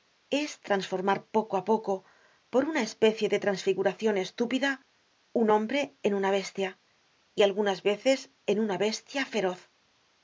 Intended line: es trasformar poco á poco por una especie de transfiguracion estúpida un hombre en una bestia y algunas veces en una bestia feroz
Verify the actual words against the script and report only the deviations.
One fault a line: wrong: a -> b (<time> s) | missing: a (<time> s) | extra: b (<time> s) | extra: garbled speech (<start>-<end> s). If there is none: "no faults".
no faults